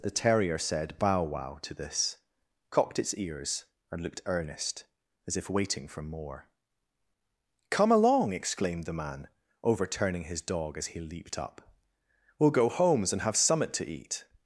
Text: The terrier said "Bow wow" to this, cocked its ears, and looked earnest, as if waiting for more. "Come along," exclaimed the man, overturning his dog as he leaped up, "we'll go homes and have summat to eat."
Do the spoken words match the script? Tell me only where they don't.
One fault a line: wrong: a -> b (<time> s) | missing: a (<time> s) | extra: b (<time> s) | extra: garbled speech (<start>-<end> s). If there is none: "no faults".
no faults